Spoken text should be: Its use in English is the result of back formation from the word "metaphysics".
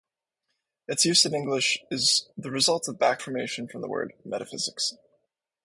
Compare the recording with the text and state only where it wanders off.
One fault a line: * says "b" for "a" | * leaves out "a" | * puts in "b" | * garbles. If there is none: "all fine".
all fine